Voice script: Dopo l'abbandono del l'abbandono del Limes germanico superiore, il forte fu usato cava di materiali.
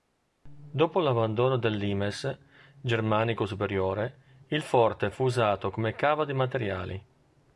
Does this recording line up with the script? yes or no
no